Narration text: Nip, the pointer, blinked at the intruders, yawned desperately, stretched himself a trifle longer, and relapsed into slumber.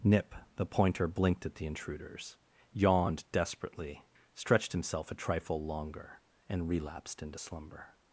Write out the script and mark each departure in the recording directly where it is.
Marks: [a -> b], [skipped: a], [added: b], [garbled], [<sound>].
Nip, the pointer, blinked at the intruders, yawned desperately, stretched himself a trifle longer, and relapsed into slumber.